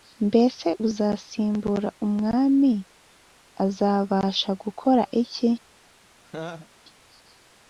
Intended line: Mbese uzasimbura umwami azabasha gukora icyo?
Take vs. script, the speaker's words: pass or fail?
fail